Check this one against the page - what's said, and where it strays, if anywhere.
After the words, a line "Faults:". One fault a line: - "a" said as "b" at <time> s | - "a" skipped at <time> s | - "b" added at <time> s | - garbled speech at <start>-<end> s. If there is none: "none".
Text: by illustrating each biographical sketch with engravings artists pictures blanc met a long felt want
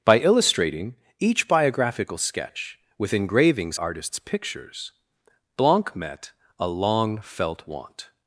by illustrating each biographical sketch with engravings artists pictures blanc met a long felt want
Faults:
none